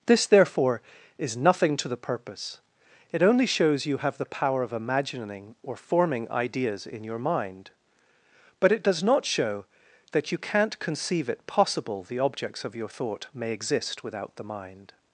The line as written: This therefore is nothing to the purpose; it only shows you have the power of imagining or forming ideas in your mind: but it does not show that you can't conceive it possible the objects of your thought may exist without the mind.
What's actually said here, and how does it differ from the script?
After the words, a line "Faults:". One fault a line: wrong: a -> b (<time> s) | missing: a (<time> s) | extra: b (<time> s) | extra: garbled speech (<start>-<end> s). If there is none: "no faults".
This therefore is nothing to the purpose; it only shows you have the power of imagining or forming ideas in your mind: but it does not show that you can't conceive it possible the objects of your thought may exist without the mind.
Faults:
no faults